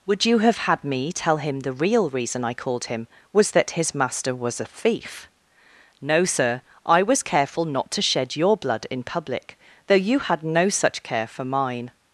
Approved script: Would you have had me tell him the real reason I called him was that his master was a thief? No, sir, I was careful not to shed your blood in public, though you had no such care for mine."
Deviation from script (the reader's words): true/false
false